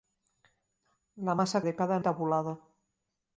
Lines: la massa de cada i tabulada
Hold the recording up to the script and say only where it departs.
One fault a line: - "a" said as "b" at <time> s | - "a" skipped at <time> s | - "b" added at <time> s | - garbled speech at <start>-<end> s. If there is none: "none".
none